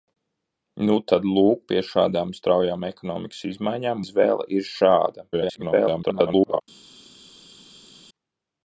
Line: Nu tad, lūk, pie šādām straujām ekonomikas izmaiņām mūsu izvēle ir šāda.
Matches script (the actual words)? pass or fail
fail